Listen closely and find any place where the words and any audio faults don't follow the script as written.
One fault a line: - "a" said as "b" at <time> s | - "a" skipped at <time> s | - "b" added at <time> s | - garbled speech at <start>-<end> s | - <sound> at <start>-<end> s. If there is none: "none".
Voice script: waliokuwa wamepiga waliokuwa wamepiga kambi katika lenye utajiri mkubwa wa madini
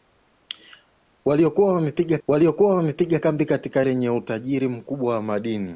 none